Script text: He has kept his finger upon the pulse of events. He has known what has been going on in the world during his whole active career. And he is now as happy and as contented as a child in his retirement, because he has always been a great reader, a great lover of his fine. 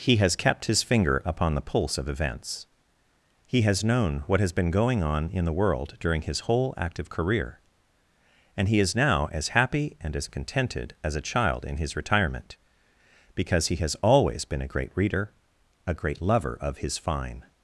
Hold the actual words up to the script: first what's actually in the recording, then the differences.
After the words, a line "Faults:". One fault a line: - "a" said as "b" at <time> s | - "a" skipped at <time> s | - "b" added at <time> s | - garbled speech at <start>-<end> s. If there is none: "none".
He has kept his finger upon the pulse of events. He has known what has been going on in the world during his whole active career. And he is now as happy and as contented as a child in his retirement, because he has always been a great reader, a great lover of his fine.
Faults:
none